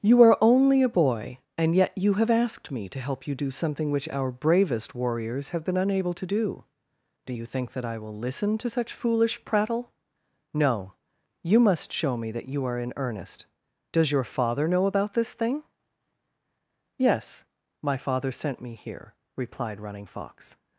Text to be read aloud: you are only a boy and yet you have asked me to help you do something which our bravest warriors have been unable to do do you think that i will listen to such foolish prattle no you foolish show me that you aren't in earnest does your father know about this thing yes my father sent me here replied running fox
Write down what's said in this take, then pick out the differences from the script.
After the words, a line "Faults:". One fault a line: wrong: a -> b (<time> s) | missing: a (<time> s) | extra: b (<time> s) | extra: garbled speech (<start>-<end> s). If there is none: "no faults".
you are only a boy and yet you have asked me to help you do something which our bravest warriors have been unable to do do you think that i will listen to such foolish prattle no you must show me that you are in earnest does your father know about this thing yes my father sent me here replied running fox
Faults:
wrong: foolish -> must (11.6 s)
wrong: aren't -> are (12.6 s)